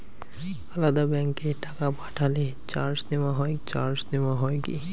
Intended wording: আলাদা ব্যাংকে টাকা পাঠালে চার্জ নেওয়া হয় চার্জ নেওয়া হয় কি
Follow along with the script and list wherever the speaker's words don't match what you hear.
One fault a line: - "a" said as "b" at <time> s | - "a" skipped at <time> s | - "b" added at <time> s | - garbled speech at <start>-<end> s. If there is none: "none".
none